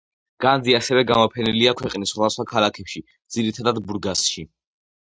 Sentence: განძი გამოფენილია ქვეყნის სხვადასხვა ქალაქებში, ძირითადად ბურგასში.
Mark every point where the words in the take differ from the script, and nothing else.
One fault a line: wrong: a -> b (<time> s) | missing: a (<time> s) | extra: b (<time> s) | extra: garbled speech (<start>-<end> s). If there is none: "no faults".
extra: ასევე (0.8 s)